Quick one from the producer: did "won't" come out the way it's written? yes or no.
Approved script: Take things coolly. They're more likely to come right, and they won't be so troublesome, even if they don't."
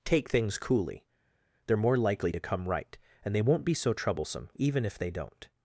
yes